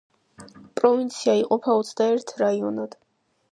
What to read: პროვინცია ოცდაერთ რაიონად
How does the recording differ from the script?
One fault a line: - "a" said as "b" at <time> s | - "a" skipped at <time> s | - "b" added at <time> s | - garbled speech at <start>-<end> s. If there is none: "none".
- "იყოფა" added at 1.4 s